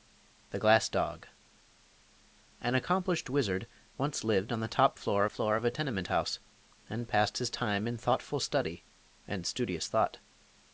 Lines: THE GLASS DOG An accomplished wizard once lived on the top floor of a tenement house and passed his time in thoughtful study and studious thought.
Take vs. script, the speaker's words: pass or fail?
fail